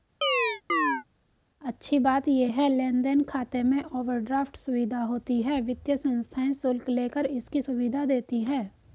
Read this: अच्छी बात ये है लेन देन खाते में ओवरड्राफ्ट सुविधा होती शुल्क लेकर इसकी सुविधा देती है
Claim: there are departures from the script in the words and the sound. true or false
true